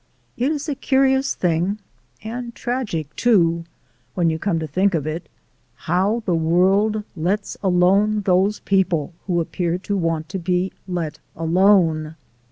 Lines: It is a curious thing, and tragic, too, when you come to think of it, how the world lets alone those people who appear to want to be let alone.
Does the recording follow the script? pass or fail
pass